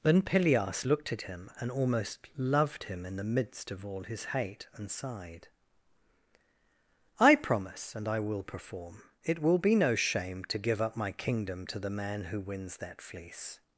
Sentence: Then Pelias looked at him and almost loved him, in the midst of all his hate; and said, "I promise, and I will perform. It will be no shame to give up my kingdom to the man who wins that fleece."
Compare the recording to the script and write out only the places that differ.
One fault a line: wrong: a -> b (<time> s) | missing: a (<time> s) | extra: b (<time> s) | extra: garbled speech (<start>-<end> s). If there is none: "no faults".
wrong: said -> sighed (4.9 s)